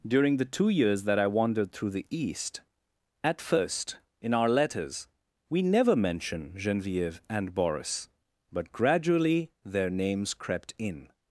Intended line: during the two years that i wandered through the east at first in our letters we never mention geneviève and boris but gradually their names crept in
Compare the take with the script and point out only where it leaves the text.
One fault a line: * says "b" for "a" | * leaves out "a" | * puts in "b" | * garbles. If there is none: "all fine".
all fine